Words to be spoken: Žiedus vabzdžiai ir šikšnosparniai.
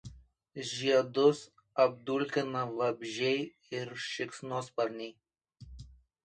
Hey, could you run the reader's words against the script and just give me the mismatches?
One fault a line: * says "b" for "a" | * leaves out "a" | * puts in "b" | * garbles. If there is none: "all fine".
* puts in "apdulkina"